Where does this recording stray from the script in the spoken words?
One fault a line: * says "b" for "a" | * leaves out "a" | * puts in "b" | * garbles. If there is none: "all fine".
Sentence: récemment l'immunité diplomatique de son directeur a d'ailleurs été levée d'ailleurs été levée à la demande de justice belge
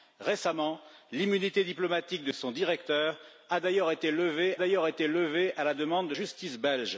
all fine